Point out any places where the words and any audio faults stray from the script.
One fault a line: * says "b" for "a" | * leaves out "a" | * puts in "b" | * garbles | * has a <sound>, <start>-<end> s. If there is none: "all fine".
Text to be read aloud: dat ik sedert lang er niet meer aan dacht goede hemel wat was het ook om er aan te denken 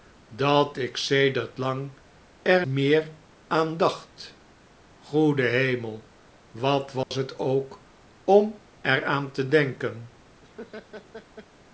* leaves out "niet"
* has a dropout, 7.0-7.1 s
* has a laugh, 10.4-11.5 s